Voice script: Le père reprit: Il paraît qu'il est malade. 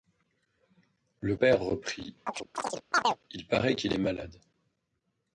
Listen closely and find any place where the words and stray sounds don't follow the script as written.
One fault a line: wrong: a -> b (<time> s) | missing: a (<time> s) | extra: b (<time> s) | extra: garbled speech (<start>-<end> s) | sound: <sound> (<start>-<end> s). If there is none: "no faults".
sound: chirp (2.3-3.2 s)